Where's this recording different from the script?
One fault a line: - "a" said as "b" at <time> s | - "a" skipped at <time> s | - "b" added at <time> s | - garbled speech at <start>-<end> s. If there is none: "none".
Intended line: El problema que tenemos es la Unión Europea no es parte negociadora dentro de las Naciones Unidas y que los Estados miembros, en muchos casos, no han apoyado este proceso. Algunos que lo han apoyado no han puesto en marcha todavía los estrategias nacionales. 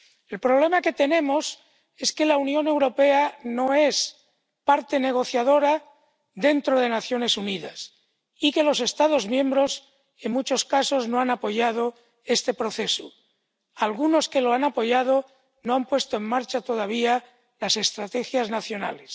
- "que" added at 2.1 s
- "los" said as "las" at 17.6 s